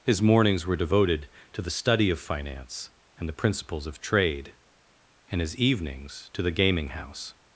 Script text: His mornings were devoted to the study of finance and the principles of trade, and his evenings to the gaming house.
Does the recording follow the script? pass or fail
pass